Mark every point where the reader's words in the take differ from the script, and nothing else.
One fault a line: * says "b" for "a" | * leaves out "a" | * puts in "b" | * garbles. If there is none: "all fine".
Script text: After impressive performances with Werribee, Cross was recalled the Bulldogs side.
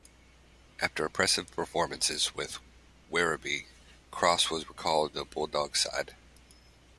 all fine